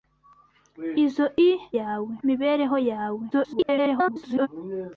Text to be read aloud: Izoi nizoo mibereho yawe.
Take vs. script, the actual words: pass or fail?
fail